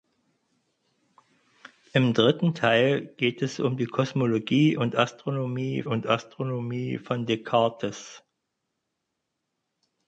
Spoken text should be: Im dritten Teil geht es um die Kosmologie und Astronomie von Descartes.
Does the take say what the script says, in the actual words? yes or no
no